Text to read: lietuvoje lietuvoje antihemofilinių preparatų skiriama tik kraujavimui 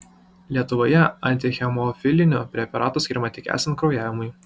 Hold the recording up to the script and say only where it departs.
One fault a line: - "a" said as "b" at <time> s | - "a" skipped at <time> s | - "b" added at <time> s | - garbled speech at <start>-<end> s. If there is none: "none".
- "lietuvoje" skipped at 1.0 s
- "esant" added at 3.5 s